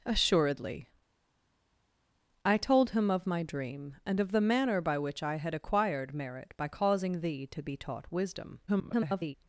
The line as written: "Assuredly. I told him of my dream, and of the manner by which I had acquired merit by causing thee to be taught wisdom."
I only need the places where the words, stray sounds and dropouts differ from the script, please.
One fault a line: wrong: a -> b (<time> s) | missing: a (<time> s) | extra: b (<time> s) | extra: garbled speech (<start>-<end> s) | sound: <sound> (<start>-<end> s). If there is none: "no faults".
extra: garbled speech (8.7-9.3 s)